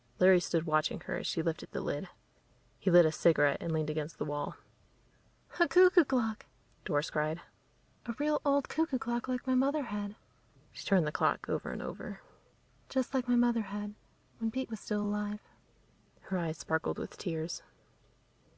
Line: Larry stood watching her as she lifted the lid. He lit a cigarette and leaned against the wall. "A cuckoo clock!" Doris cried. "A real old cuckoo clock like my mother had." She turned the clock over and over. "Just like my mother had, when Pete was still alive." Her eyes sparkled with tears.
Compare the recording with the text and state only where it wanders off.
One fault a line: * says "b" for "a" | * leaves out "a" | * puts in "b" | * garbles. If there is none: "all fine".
all fine